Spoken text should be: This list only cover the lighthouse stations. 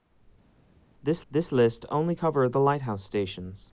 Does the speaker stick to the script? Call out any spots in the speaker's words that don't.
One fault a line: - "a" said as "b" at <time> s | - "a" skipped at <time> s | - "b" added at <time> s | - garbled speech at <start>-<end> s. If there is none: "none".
- "this" added at 1.3 s